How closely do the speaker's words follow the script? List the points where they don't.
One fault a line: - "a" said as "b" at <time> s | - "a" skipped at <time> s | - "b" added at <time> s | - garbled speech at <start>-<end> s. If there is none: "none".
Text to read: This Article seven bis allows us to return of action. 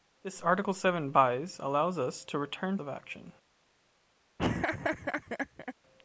none